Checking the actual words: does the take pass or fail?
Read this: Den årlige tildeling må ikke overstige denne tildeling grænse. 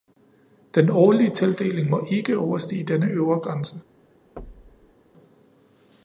fail